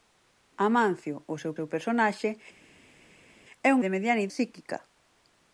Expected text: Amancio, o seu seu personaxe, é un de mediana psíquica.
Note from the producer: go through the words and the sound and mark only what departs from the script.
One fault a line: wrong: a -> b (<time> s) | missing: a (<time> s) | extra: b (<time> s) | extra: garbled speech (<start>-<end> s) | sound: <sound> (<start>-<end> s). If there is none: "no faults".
no faults